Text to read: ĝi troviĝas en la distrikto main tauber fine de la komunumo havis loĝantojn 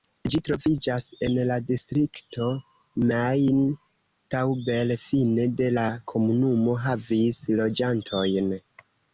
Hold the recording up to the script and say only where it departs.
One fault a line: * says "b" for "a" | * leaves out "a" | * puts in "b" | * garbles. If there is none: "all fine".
all fine